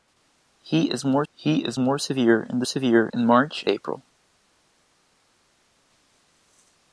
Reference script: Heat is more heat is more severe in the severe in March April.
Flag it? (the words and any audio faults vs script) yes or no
no